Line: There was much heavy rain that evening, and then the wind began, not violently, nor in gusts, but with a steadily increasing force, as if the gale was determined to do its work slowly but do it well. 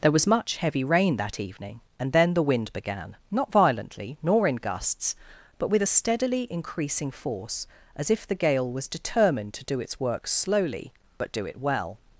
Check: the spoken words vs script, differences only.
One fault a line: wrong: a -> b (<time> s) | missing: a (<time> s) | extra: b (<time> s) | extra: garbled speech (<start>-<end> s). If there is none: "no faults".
no faults